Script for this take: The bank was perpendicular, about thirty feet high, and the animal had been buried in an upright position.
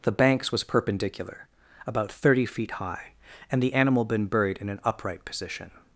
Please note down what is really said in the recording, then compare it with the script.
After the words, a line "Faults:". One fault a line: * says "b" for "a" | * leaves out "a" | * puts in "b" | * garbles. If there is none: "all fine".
The banks was perpendicular, about thirty feet high, and the animal been buried in an upright position.
Faults:
* says "banks" for "bank"
* leaves out "had"